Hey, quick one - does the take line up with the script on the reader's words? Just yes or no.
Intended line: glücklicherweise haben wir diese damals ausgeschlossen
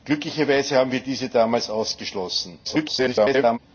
no